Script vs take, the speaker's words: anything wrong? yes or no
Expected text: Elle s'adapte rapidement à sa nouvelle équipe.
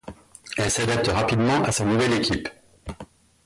no